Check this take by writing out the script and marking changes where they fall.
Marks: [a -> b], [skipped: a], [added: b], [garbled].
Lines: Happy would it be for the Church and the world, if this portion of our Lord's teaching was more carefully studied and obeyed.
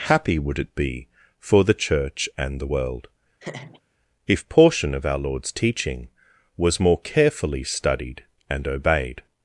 Happy would it be for the Church and the world, if [skipped: this] portion of our Lord's teaching was more carefully studied and obeyed.